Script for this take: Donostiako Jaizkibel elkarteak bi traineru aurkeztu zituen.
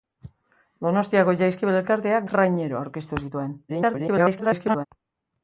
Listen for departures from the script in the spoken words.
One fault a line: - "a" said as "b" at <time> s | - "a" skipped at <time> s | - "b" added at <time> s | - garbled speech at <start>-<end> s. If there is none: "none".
- "bi" skipped at 2.3 s
- garbled speech at 3.7-4.9 s